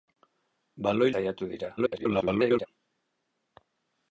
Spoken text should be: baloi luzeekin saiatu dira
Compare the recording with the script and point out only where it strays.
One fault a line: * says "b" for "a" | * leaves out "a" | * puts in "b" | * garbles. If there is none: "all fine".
* leaves out "luzeekin"
* garbles